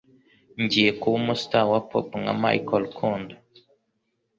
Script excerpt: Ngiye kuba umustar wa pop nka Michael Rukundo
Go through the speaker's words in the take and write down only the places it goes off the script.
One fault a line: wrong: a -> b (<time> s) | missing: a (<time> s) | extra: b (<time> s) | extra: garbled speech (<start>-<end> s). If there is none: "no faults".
no faults